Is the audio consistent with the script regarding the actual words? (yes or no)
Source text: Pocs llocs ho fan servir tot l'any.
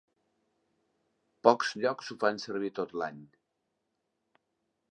yes